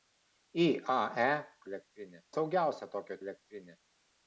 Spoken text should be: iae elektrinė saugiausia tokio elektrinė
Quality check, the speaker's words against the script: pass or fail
pass